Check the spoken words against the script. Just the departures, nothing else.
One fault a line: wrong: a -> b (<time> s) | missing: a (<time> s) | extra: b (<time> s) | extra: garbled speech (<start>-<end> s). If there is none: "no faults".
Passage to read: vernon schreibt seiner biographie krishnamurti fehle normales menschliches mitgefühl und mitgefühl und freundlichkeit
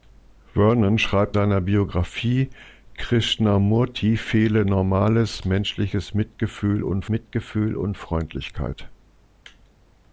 no faults